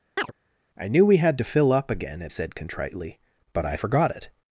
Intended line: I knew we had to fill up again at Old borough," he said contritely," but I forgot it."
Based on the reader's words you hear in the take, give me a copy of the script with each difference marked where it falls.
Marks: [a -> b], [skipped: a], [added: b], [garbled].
I knew we had to fill up again at [skipped: Old borough," he] said contritely," but I forgot it."